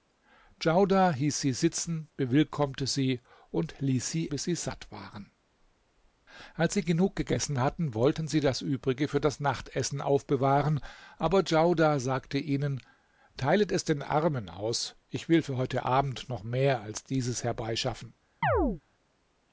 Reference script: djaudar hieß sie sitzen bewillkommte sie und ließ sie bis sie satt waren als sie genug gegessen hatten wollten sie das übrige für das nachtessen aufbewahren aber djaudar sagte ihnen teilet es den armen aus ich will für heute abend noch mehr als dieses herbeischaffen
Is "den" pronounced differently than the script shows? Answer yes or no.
no